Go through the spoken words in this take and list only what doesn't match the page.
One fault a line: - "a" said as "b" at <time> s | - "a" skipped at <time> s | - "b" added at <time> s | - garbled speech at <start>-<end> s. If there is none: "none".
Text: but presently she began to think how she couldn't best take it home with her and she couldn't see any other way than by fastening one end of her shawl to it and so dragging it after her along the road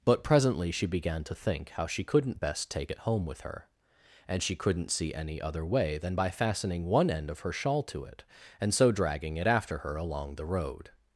none